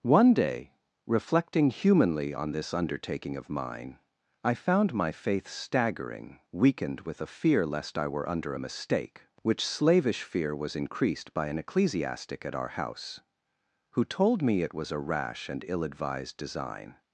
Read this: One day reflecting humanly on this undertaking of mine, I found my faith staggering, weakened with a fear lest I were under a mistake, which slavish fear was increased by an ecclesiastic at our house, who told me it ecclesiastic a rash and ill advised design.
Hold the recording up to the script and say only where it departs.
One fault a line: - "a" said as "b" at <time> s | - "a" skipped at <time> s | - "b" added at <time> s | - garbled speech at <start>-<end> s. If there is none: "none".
- "ecclesiastic" said as "was" at 14.7 s